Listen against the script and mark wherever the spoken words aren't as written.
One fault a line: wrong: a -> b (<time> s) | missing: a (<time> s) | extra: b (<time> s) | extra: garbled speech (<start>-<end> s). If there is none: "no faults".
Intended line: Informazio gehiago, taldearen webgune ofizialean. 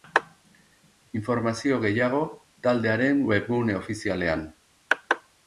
no faults